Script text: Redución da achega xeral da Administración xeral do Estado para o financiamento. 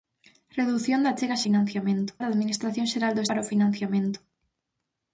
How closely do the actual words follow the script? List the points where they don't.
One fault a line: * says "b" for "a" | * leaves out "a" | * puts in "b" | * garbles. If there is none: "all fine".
* says "financiamento" for "xeral"
* leaves out "Estado"